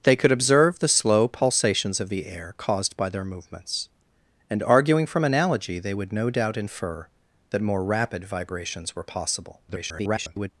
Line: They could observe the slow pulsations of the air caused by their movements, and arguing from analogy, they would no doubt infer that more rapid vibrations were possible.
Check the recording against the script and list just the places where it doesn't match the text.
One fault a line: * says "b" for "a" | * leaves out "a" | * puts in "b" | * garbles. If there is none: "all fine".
* garbles